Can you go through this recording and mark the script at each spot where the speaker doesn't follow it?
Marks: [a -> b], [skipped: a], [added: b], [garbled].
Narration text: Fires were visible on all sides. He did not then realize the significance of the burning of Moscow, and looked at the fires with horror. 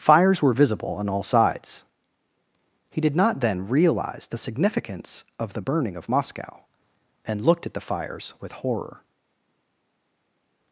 Fires were visible on all sides. He did not then realize the significance of the burning of Moscow, and looked at the fires with horror.